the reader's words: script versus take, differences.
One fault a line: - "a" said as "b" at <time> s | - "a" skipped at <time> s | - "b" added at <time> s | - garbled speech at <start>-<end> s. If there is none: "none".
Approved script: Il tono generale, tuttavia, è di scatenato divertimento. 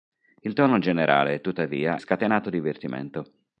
- "è di" skipped at 2.0 s